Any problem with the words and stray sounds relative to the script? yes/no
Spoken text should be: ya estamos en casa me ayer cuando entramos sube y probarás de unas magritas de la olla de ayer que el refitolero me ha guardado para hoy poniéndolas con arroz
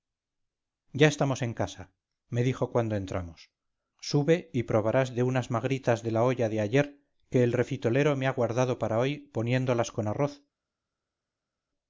yes